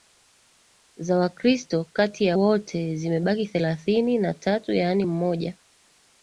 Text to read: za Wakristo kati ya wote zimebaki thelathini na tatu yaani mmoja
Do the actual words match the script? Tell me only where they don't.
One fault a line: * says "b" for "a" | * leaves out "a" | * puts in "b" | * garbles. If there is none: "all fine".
all fine